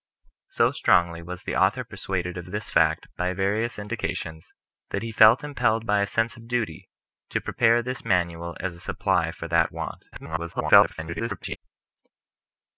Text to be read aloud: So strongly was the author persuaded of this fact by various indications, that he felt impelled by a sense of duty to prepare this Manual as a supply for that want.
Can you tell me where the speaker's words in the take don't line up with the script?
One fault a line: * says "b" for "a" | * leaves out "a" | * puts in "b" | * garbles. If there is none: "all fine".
* garbles